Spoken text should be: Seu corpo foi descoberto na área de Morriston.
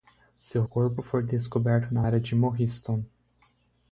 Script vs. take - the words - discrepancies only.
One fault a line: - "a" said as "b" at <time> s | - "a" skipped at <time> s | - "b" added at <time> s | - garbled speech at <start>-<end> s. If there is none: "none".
none